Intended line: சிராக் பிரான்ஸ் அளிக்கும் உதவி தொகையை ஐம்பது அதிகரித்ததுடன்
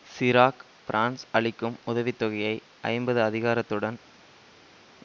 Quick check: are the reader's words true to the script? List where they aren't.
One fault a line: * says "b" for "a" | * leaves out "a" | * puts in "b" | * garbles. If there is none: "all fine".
all fine